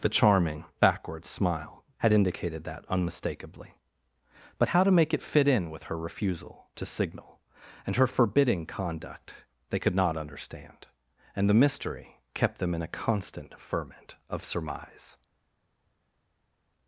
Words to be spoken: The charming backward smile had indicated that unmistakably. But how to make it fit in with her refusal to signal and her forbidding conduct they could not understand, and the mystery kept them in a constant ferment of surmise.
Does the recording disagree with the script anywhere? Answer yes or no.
no